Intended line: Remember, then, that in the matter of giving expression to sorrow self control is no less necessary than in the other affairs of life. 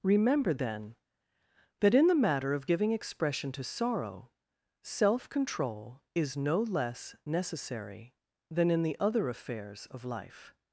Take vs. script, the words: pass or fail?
pass